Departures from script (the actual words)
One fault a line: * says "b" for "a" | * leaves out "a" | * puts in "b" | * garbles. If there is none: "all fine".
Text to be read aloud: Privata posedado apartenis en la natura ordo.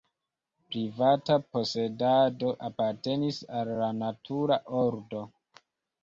* says "al" for "en"